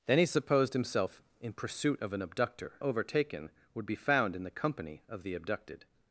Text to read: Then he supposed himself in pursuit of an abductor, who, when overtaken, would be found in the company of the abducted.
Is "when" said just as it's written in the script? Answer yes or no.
no